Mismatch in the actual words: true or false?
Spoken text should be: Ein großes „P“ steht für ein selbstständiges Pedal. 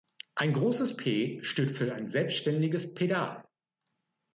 false